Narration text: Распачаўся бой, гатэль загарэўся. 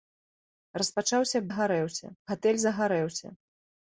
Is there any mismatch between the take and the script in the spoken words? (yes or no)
yes